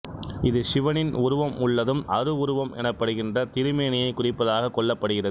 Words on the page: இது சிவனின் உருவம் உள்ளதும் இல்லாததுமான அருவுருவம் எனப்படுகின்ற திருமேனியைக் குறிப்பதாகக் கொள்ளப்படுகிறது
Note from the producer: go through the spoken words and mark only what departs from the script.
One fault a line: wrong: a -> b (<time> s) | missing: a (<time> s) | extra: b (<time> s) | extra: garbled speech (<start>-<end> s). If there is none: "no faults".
missing: இல்லாததுமான (2.0 s)